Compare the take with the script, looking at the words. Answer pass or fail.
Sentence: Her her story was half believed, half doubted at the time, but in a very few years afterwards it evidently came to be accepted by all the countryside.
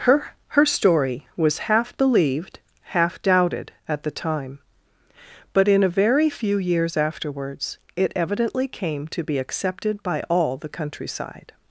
pass